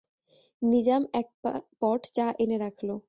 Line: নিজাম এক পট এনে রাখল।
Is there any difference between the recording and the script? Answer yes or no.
yes